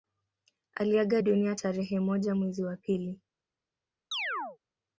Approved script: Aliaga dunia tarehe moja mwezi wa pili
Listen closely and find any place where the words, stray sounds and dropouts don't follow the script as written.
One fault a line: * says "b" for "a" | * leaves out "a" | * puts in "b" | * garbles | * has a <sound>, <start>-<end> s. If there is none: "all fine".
* has a chirp, 4.1-4.6 s